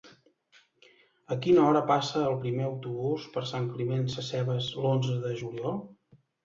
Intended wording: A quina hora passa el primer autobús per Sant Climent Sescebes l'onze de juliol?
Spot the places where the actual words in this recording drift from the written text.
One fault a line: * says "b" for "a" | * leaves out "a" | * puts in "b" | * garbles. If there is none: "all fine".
all fine